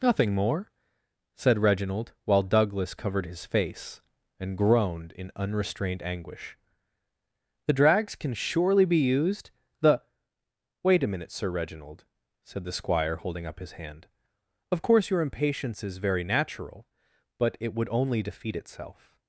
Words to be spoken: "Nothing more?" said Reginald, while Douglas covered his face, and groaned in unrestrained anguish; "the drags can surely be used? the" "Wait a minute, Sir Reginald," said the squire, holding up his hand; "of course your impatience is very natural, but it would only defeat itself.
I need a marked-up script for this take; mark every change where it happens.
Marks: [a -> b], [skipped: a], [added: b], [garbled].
"Nothing more?" said Reginald, while Douglas covered his face, and groaned in unrestrained anguish; "the drags can surely be used? the" "Wait a minute, Sir Reginald," said the squire, holding up his hand; "of course your impatience is very natural, but it would only defeat itself.